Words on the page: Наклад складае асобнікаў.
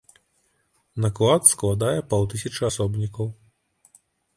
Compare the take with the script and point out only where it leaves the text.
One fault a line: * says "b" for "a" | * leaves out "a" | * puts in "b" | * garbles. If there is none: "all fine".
* puts in "паўтысячы"